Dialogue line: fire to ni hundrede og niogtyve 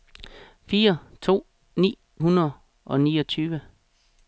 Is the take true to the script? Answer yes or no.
yes